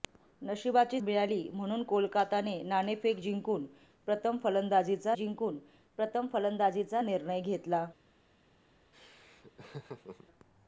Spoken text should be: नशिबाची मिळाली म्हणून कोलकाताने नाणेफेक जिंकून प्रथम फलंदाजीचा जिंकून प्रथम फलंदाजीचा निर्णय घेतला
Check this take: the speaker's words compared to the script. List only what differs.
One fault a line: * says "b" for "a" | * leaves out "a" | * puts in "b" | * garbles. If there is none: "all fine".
all fine